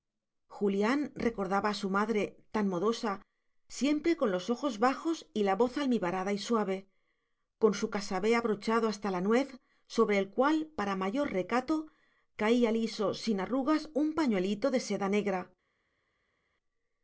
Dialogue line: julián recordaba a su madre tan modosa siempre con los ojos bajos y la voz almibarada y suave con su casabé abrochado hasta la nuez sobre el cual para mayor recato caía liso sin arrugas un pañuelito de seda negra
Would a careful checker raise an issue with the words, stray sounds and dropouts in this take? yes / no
no